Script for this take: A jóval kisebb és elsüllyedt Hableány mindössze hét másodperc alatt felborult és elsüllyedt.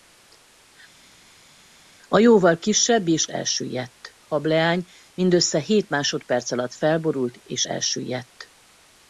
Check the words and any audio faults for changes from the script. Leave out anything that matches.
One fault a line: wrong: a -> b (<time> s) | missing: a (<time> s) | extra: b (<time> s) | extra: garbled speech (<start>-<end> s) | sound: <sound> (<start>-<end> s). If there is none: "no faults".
no faults